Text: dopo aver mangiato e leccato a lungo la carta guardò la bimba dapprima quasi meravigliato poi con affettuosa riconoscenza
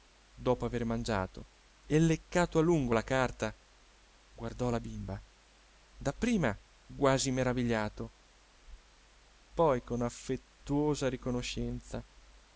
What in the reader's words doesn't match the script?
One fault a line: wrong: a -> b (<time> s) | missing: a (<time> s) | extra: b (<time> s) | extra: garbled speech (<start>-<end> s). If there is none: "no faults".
no faults